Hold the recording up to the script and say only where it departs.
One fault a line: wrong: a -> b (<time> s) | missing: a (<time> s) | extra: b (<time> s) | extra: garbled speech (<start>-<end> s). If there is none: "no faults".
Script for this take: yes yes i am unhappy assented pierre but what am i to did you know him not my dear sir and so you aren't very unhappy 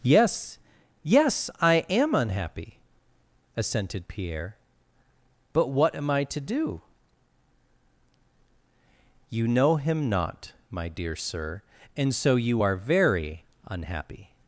wrong: did -> do (6.4 s)
wrong: aren't -> are (12.6 s)